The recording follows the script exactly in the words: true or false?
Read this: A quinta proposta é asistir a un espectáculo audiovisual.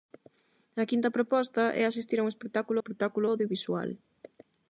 false